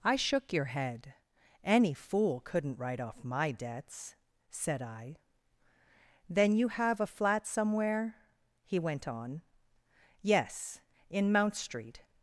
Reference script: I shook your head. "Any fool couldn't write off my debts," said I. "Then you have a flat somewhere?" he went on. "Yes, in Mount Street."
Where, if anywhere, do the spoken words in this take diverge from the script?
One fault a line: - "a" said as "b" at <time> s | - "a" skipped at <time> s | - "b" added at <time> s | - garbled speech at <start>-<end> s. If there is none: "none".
none